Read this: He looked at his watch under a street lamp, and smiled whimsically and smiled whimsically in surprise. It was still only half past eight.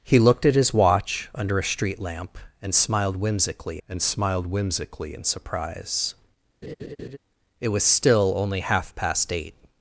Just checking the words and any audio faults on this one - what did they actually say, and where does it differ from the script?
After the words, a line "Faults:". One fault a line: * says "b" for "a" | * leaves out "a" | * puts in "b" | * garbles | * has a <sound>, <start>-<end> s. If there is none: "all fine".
He looked at his watch under a street lamp, and smiled whimsically and smiled whimsically in surprise. It was still only half past eight.
Faults:
* has a laugh, 6.6-7.2 s